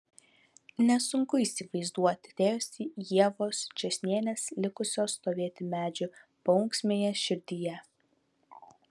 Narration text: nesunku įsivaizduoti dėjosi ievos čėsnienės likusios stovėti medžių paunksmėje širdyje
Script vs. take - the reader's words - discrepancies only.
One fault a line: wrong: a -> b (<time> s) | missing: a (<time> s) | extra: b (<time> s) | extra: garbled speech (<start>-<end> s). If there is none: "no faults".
no faults